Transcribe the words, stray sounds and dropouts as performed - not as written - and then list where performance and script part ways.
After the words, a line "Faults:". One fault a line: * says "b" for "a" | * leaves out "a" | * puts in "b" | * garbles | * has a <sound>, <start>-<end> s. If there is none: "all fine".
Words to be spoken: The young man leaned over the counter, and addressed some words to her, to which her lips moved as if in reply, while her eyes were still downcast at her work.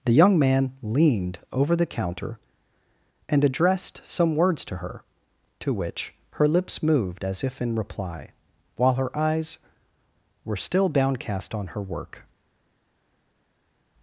The young man leaned over the counter, and addressed some words to her, to which her lips moved as if in reply, while her eyes were still downcast on her work.
Faults:
* says "on" for "at"